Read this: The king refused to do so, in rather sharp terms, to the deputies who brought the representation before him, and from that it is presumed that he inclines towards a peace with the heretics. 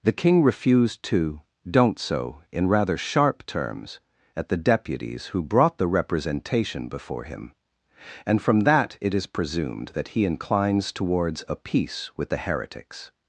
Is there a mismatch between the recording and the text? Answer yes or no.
yes